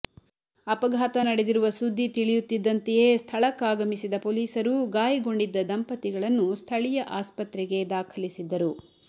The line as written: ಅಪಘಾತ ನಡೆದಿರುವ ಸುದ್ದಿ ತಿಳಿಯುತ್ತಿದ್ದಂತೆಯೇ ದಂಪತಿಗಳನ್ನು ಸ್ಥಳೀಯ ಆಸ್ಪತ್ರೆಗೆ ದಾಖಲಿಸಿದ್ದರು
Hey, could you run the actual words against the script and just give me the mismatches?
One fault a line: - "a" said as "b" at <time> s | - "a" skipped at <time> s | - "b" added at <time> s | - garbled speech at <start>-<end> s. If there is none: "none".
- "ಸ್ಥಳಕ್ಕಾಗಮಿಸಿದ ಪೊಲೀಸರು ಗಾಯಗೊಂಡಿದ್ದ" added at 3.2 s